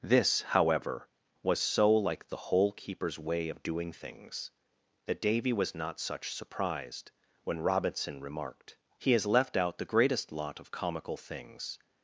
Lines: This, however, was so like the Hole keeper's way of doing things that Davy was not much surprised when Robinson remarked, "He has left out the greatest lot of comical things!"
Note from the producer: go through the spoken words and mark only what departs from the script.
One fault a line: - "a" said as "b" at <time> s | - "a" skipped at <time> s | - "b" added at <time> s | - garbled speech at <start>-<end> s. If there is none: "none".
- "much" said as "such" at 6.0 s